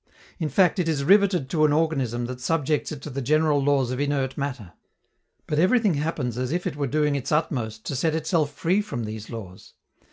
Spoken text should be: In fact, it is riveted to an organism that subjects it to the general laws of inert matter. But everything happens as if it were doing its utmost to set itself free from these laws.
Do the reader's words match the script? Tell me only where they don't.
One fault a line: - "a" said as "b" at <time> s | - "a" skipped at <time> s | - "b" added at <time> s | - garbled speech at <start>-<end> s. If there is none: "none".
none